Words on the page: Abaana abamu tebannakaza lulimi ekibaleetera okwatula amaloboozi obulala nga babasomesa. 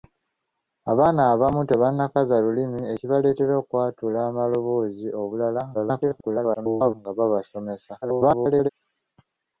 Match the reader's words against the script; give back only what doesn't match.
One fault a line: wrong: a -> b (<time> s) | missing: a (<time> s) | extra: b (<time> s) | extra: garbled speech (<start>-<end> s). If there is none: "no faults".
extra: garbled speech (5.7-6.9 s)
extra: garbled speech (8.0-8.7 s)